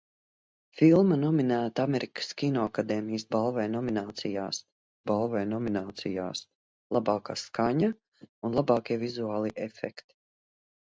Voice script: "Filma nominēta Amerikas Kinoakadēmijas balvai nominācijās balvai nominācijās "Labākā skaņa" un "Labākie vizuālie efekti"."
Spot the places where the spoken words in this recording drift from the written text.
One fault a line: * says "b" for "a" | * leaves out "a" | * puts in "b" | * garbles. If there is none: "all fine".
all fine